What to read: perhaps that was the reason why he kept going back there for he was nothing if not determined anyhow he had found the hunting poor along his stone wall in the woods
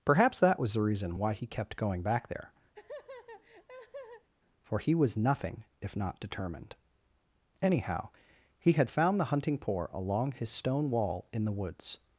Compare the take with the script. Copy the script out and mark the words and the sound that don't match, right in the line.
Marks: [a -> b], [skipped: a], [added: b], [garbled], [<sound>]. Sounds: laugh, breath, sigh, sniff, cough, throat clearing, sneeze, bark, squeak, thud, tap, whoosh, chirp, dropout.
perhaps that was the reason why he kept going back there [laugh] for he was nothing if not determined anyhow he had found the hunting poor along his stone wall in the woods